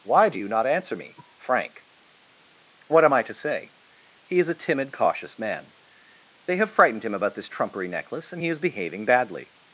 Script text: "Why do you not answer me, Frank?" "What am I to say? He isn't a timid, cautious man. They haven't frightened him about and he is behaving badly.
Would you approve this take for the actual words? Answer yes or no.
no